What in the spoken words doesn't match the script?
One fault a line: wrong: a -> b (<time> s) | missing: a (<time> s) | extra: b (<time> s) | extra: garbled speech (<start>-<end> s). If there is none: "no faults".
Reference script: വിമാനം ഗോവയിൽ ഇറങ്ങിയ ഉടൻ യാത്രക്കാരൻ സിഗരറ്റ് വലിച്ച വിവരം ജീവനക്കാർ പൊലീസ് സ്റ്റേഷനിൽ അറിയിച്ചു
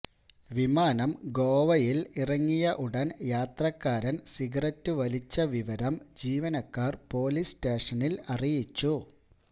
no faults